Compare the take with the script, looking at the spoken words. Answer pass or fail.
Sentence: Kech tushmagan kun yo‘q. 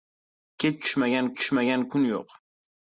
fail